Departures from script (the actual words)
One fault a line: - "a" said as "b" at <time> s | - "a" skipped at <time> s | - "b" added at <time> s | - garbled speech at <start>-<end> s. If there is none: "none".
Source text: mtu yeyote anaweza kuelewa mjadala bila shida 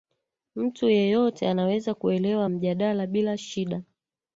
none